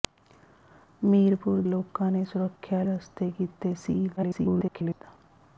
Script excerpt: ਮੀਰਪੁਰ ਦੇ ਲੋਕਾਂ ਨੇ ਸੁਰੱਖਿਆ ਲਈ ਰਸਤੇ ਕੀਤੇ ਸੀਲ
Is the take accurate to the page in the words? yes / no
no